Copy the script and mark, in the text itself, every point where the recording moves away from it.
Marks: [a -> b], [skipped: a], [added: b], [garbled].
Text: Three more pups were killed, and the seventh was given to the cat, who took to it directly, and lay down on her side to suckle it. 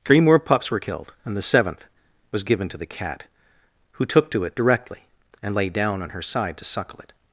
Three more pups were killed, and the seventh was given to the cat, who took to it directly, and lay down on her side to suckle it.